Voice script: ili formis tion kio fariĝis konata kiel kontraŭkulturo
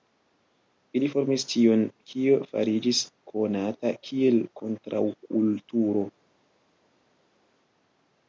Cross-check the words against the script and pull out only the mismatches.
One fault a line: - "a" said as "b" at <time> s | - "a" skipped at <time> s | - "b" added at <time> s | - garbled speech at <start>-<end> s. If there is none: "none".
none